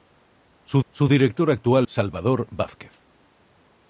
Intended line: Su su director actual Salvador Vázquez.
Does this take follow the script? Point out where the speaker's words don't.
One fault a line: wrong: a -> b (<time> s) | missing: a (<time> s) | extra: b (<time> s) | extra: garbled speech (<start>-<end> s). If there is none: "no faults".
no faults